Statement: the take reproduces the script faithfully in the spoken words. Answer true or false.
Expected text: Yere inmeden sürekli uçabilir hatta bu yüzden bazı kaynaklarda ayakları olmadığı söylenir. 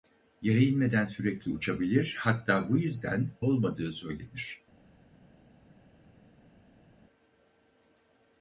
false